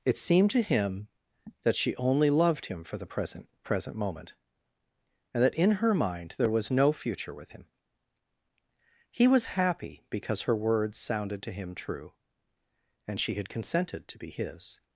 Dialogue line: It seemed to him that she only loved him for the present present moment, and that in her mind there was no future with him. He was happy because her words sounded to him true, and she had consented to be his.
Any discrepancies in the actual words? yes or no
no